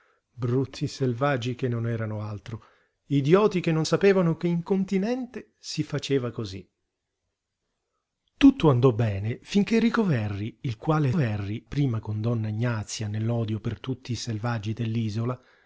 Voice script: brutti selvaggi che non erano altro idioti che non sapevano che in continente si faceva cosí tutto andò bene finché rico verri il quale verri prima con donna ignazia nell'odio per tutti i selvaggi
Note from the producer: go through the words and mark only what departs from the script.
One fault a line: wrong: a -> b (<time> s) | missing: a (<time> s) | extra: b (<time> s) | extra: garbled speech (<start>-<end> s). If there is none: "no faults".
no faults